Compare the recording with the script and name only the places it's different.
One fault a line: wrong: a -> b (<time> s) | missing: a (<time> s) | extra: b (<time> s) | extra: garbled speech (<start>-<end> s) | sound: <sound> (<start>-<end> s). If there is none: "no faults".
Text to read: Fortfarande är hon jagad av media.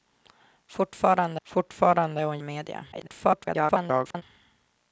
extra: fortfarande (1.4 s)
missing: jagad (2.4 s)
extra: garbled speech (2.9-4.2 s)